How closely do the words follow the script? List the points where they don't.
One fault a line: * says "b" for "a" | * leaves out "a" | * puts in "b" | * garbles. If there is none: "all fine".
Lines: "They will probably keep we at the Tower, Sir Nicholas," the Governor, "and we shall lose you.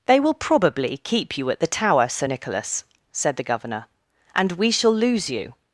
* says "you" for "we"
* puts in "said"